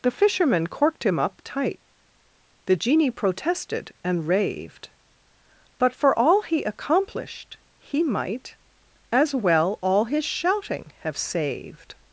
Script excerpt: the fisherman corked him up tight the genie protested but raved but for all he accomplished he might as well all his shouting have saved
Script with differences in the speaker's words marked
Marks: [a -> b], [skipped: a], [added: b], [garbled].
the fisherman corked him up tight the genie protested [but -> and] raved but for all he accomplished he might as well all his shouting have saved